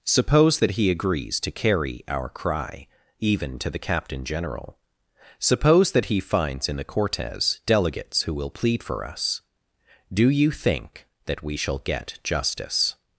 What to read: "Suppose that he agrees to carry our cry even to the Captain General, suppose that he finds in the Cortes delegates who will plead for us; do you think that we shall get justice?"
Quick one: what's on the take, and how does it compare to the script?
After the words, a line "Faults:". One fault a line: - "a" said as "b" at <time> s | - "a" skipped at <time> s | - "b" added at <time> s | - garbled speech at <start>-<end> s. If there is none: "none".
"Suppose that he agrees to carry our cry even to the Captain General, suppose that he finds in the Cortes delegates who will plead for us; do you think that we shall get justice?"
Faults:
none